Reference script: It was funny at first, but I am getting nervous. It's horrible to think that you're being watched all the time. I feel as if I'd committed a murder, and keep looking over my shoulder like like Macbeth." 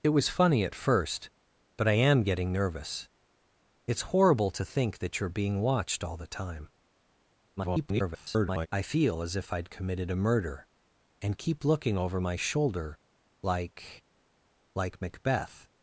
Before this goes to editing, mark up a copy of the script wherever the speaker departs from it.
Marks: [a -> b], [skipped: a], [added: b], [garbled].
It was funny at first, but I am getting nervous. It's horrible to think that you're being watched all the time. [garbled] I feel as if I'd committed a murder, and keep looking over my shoulder like like Macbeth."